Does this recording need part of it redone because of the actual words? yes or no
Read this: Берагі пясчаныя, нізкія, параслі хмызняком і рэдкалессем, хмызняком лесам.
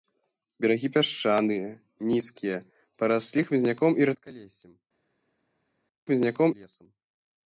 no